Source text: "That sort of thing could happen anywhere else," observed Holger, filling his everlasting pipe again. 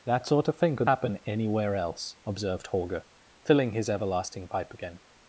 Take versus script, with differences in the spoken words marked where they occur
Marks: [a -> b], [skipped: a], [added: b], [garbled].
"That sort of thing could happen anywhere else," observed Holger, filling his everlasting pipe again.